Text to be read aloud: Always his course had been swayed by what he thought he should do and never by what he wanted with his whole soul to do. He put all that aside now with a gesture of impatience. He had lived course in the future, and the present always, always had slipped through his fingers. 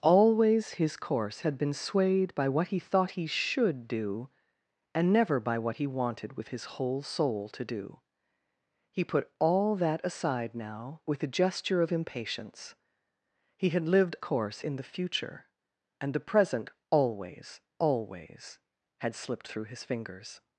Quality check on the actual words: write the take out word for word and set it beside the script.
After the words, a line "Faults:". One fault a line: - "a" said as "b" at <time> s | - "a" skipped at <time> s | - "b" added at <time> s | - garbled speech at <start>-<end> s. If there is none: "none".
Always his course had been swayed by what he thought he should do and never by what he wanted with his whole soul to do. He put all that aside now with a gesture of impatience. He had lived course in the future, and the present always, always had slipped through his fingers.
Faults:
none